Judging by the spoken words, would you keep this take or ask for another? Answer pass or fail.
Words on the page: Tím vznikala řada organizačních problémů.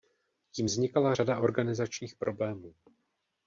pass